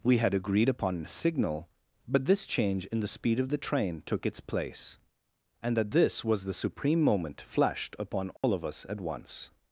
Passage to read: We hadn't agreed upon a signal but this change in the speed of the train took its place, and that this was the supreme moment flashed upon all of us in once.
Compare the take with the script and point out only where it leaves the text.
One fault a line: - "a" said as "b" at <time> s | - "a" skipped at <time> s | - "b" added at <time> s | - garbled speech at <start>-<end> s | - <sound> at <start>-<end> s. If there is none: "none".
- "hadn't" said as "had" at 0.2 s
- dropout at 8.4-8.4 s
- "in" said as "at" at 8.9 s